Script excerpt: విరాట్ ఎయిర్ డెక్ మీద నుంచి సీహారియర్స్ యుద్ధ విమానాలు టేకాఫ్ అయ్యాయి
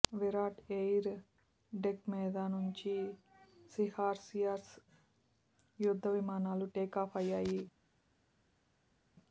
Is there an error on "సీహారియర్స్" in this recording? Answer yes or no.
no